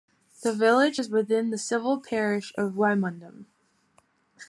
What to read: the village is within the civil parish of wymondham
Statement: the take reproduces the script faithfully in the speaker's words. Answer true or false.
true